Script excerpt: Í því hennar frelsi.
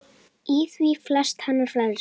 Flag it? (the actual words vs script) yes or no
yes